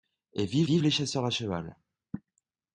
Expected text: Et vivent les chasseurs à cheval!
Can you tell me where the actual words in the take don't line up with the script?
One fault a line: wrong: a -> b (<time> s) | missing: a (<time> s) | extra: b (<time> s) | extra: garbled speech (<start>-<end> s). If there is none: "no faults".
extra: vivent (0.6 s)